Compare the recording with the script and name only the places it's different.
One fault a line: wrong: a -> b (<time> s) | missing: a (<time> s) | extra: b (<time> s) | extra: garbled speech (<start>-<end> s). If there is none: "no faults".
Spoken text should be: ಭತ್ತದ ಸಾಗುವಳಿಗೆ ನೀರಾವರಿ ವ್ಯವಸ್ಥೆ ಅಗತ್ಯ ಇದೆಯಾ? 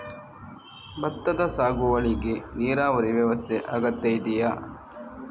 no faults